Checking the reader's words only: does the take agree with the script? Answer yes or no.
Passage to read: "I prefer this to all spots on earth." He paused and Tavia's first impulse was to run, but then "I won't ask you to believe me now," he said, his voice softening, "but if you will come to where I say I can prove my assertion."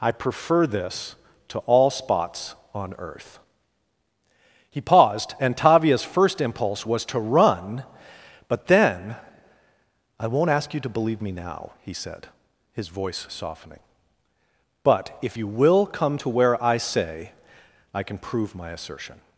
yes